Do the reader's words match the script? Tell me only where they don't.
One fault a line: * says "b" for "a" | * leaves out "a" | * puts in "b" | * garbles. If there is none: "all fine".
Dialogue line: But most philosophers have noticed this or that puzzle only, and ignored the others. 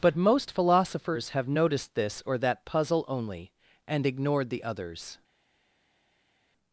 all fine